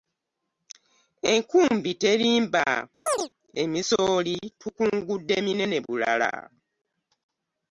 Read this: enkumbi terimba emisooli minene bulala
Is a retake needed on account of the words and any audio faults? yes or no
yes